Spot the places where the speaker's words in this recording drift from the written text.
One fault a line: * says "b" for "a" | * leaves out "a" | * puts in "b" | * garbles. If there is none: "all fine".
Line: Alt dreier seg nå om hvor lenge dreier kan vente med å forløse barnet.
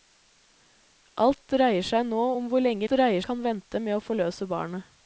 all fine